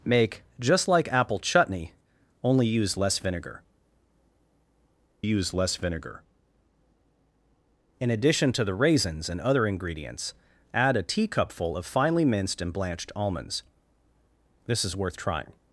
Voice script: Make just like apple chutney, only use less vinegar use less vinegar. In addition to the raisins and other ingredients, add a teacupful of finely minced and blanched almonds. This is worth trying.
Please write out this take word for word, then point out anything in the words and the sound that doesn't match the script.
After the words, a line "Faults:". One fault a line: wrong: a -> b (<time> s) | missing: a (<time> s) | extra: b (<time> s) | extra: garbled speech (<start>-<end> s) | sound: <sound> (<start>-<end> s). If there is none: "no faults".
Make just like apple chutney, only use less vinegar use less vinegar. In addition to the raisins and other ingredients, add a teacupful of finely minced and blanched almonds. This is worth trying.
Faults:
no faults